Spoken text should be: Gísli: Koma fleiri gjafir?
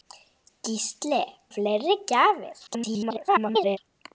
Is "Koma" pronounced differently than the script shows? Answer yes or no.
yes